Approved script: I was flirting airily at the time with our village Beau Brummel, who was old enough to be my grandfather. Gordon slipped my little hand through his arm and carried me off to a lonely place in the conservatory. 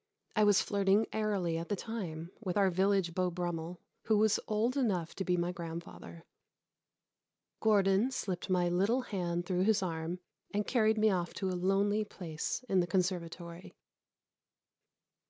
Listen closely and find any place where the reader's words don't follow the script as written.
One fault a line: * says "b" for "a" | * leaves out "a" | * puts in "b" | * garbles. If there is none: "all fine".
all fine